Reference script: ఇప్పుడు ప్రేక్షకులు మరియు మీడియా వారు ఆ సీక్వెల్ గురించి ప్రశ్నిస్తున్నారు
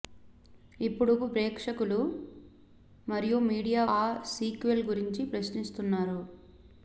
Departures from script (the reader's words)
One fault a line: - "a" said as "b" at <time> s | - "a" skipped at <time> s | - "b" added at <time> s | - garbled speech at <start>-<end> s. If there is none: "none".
- "వారు" skipped at 3.8 s